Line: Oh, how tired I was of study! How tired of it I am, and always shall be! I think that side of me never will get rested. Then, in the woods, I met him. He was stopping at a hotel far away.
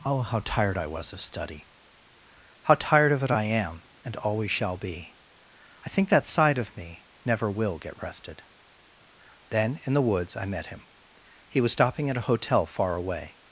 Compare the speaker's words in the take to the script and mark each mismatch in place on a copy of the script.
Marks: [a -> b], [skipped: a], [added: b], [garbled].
Oh, how tired I was of study! How tired of it I am, and always shall be! I think that side of me never will get rested. Then, in the woods, I met him. He was stopping at a hotel far away.